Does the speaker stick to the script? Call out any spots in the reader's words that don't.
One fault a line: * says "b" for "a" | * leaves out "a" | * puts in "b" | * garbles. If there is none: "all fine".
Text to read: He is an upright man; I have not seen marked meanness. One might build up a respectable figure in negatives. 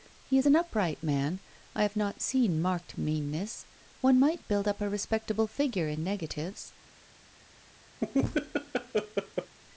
all fine